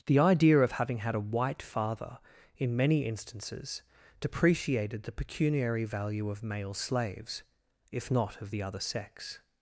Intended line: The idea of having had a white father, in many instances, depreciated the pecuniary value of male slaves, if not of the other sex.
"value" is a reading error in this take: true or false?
false